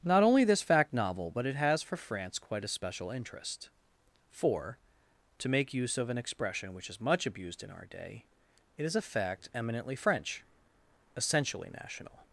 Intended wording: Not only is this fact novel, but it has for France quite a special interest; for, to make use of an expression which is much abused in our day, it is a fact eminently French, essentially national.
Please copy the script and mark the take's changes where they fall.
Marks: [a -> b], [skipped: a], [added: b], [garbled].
Not only [skipped: is] this fact novel, but it has for France quite a special interest; for, to make use of an expression which is much abused in our day, it is a fact eminently French, essentially national.